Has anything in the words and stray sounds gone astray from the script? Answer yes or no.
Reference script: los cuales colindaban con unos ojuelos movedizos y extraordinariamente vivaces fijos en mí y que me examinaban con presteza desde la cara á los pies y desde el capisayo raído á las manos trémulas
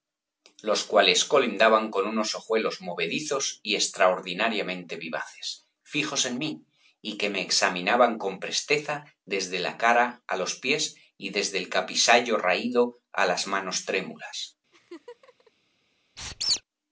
yes